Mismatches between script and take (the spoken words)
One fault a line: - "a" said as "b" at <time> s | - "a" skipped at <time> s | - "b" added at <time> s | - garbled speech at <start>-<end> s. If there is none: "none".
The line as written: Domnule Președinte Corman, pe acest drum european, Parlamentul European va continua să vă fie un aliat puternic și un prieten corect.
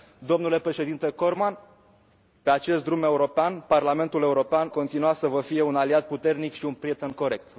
- "va" skipped at 4.7 s